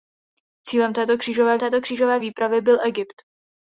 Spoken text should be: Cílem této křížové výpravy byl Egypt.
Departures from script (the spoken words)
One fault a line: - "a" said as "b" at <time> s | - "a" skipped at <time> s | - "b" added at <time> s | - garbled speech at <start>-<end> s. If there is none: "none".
- "této křížové" added at 1.6 s